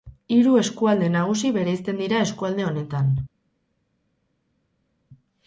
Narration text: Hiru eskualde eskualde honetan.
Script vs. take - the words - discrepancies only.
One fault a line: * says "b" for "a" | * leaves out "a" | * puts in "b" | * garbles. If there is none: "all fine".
* puts in "nagusi bereizten dira"